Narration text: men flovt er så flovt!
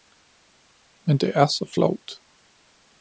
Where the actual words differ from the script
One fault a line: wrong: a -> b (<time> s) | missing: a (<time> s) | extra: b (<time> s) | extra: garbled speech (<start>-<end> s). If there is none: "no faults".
wrong: flovt -> det (1.2 s)